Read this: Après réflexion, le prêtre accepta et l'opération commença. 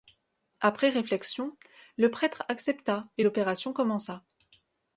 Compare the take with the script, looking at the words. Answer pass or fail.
pass